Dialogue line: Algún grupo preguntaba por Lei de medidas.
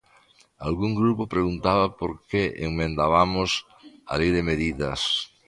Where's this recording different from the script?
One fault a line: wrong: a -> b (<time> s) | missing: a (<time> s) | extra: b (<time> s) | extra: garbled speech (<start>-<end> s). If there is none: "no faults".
extra: que emendabamos a (2.3 s)